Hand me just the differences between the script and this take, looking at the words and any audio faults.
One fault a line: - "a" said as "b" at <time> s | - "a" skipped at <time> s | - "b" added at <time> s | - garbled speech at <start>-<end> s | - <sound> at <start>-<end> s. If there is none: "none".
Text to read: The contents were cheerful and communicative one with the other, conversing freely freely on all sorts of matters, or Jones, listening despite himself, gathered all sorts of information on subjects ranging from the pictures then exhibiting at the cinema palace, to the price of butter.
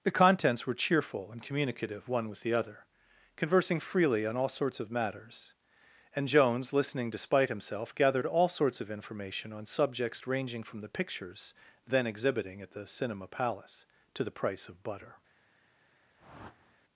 - "freely" skipped at 4.2 s
- "or" said as "and" at 6.2 s
- whoosh at 16.2-16.8 s